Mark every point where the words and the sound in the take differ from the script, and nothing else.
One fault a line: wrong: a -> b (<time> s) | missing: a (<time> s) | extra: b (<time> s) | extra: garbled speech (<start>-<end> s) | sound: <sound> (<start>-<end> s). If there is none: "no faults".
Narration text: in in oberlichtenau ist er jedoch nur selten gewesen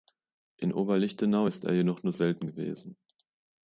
missing: in (0.7 s)